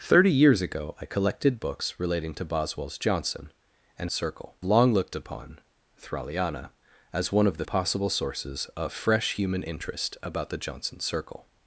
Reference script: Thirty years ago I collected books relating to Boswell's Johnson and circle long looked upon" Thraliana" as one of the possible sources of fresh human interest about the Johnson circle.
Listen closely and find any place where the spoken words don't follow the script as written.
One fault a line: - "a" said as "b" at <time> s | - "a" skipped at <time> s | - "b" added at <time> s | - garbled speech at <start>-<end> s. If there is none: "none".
none